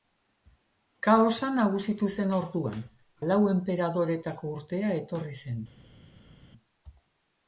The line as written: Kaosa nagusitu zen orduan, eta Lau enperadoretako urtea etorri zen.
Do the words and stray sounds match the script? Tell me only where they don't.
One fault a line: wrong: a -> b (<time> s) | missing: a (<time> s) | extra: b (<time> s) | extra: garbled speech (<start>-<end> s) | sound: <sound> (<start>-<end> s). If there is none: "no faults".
missing: eta (2.8 s)